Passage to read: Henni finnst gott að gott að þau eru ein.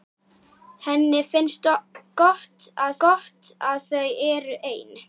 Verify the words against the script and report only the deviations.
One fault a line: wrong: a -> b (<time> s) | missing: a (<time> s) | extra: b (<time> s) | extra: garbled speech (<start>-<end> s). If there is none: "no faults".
no faults